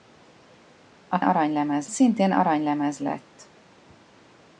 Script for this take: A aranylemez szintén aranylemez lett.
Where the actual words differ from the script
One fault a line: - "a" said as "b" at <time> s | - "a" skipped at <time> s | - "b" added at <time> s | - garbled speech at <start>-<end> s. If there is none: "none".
none